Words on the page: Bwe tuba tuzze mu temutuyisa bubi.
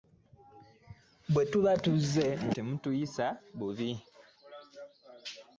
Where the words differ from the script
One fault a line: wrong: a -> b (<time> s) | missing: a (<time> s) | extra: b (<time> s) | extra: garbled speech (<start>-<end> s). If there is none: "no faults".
no faults